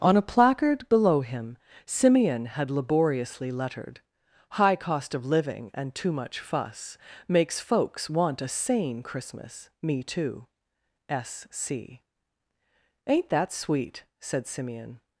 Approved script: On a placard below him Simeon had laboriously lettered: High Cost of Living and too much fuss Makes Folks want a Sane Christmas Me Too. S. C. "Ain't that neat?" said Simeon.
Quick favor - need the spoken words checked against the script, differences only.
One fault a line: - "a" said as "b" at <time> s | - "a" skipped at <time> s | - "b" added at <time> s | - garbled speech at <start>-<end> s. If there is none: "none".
- "neat" said as "sweet" at 13.5 s